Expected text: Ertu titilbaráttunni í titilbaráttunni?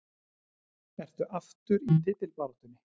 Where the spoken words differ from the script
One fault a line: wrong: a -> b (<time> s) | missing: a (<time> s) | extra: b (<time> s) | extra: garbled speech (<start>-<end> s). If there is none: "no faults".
wrong: titilbaráttunni -> aftur (1.4 s)